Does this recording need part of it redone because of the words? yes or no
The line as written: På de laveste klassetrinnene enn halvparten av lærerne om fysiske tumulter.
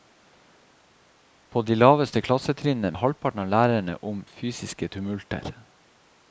no